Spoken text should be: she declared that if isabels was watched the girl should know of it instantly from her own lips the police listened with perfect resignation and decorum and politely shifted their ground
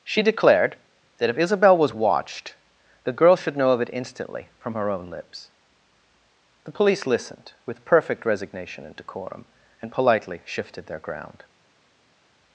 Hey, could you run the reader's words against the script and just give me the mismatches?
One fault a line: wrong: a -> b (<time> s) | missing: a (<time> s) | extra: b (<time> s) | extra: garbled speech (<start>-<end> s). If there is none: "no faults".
wrong: isabels -> isabel (1.4 s)